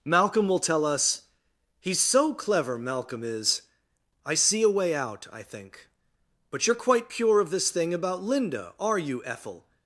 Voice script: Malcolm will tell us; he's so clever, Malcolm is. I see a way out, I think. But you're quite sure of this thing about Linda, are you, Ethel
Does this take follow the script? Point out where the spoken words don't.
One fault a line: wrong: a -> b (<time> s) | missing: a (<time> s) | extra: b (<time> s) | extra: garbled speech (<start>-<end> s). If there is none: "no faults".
wrong: sure -> pure (7.1 s)